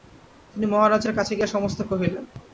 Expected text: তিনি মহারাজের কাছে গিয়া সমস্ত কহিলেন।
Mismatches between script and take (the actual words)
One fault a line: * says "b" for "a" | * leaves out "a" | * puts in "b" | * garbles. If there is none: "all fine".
all fine